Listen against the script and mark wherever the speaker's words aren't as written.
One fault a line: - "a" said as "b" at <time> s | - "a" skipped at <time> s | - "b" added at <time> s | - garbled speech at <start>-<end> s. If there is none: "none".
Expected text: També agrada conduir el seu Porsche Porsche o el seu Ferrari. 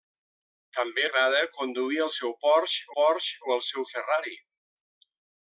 none